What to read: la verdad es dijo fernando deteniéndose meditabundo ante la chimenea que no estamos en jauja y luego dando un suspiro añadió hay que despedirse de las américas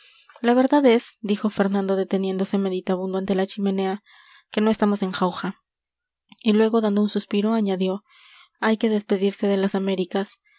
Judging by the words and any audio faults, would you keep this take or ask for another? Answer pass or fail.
pass